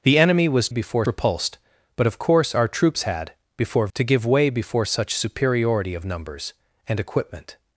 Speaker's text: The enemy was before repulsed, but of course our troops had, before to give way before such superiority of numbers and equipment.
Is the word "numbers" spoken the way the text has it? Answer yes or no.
yes